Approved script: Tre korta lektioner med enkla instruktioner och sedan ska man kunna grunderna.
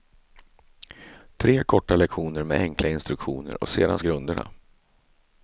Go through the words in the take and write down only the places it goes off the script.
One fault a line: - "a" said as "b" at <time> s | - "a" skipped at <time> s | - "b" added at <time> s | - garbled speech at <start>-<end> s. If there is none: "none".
- "ska man kunna" skipped at 4.0 s